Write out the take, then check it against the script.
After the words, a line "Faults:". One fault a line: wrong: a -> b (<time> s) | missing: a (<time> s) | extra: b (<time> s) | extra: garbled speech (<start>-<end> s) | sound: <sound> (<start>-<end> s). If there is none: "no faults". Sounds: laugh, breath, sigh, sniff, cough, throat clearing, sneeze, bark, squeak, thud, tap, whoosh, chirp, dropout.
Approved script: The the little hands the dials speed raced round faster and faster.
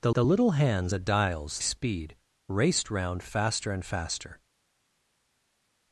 The the little hands the dials speed raced round faster and faster.
Faults:
no faults